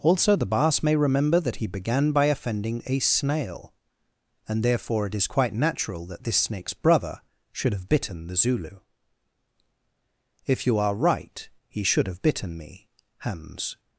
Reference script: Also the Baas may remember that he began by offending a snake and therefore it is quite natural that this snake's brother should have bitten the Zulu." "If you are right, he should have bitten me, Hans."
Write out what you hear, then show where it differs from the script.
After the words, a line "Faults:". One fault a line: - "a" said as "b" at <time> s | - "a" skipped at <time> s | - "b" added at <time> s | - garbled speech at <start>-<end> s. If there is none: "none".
Also the Baas may remember that he began by offending a snail and therefore it is quite natural that this snake's brother should have bitten the Zulu." "If you are right, he should have bitten me, Hans."
Faults:
- "snake" said as "snail" at 3.0 s